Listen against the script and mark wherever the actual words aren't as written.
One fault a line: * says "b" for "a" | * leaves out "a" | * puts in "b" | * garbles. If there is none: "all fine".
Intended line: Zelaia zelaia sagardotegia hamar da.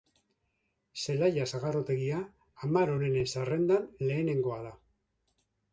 * leaves out "zelaia"
* puts in "onenen zerrendan lehenengoa"